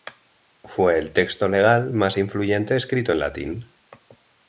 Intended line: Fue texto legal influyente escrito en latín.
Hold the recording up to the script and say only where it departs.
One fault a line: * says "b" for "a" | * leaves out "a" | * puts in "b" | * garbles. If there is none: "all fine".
* puts in "el"
* puts in "más"